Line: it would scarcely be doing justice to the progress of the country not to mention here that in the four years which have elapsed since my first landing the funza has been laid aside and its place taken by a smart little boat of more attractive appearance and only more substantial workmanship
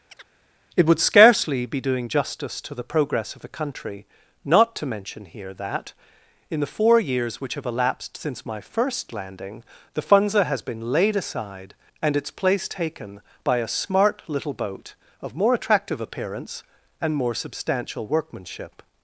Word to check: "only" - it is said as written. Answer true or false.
false